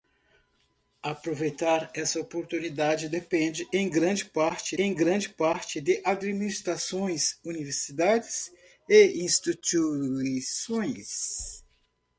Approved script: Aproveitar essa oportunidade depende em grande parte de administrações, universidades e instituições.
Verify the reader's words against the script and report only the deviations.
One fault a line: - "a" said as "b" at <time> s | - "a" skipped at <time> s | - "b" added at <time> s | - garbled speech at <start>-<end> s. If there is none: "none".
- "em grande parte" added at 4.7 s